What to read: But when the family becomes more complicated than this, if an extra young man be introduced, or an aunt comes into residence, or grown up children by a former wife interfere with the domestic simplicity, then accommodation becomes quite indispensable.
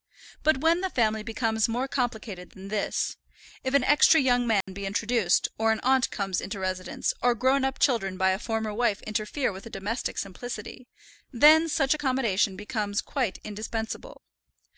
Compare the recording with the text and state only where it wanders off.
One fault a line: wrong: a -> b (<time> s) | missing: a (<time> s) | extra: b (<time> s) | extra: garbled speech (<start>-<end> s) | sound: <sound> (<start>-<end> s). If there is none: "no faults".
sound: dropout (4.6-4.7 s)
extra: such (11.7 s)